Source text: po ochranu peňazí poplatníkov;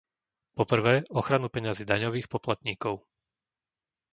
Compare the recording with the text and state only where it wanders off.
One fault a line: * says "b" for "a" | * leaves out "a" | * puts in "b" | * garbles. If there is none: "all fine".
* puts in "prvé"
* puts in "daňových"